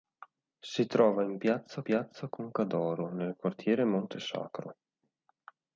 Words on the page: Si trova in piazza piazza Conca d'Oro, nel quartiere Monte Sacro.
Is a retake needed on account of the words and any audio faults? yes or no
no